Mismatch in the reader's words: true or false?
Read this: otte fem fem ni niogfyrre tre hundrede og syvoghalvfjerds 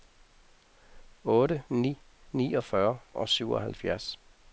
true